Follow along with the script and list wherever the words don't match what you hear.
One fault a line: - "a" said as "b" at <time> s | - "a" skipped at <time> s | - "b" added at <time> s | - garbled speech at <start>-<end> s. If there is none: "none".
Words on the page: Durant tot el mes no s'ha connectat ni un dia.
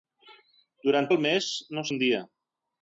- "tot" skipped at 1.1 s
- "s'ha connectat ni" skipped at 1.8 s